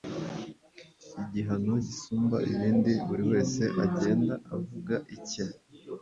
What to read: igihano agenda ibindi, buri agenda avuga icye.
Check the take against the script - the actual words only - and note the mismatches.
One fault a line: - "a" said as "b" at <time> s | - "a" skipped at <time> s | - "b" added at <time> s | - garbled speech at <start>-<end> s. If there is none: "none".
- "agenda" said as "gisumba" at 1.9 s
- "wese" added at 3.3 s